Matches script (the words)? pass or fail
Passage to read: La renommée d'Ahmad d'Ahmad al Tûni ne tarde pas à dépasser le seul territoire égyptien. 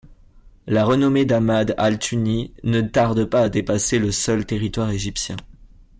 fail